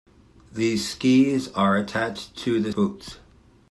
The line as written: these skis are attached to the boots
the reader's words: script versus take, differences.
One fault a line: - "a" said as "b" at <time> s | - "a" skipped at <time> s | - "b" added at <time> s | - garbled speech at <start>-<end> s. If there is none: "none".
none